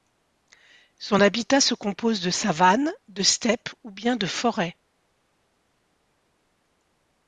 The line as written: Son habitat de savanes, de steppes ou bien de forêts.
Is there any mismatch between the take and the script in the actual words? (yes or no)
yes